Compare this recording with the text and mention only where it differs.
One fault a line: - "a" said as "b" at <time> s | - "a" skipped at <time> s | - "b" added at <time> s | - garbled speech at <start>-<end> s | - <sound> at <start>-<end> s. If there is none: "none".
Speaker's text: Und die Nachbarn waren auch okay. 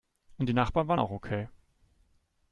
none